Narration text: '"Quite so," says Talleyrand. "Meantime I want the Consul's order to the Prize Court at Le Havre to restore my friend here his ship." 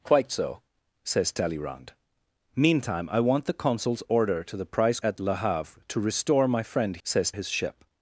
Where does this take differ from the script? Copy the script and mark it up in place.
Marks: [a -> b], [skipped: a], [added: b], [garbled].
'"Quite so," says Talleyrand. "Meantime I want the Consul's order to the Prize [skipped: Court] at Le Havre to restore my friend [here -> says] his ship."